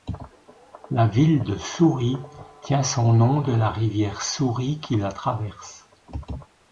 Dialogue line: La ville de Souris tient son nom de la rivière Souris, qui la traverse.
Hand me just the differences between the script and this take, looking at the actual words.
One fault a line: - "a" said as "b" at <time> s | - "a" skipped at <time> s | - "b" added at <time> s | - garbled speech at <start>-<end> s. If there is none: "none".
none